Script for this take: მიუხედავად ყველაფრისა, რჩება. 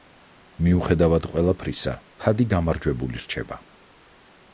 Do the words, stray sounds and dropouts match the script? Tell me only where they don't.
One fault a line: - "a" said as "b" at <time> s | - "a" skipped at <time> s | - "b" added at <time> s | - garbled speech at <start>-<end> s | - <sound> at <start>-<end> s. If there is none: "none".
- "ჰადი გამარჯვებული" added at 2.3 s